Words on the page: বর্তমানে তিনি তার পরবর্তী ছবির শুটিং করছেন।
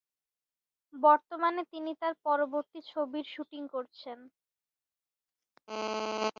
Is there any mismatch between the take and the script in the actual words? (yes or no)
no